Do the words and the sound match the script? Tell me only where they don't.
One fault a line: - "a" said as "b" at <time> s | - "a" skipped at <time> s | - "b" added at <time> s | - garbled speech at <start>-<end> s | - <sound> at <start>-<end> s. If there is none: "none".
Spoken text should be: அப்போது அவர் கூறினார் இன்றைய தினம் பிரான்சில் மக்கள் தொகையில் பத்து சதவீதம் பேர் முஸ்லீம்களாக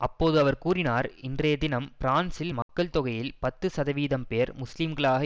- dropout at 2.6-2.7 s